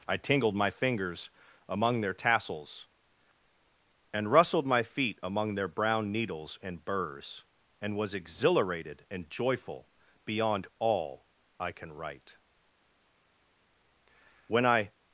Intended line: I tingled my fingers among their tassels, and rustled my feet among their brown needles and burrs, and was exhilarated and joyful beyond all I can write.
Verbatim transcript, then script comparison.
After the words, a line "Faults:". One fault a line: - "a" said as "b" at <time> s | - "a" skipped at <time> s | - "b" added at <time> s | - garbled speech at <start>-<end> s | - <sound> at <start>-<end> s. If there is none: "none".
I tingled my fingers among their tassels, and rustled my feet among their brown needles and burrs, and was exhilarated and joyful beyond all I can write. When I
Faults:
- "When I" added at 14.5 s